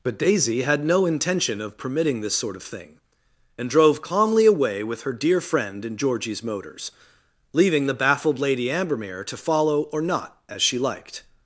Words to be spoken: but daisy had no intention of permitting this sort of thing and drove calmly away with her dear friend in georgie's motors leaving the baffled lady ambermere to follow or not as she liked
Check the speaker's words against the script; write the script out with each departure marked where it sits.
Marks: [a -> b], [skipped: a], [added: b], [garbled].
but daisy had no intention of permitting this sort of thing and drove calmly away with her dear friend in georgie's motors leaving the baffled lady ambermere to follow or not as she liked